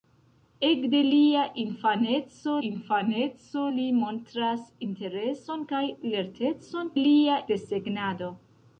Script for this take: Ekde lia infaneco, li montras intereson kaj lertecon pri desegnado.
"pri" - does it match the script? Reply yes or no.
no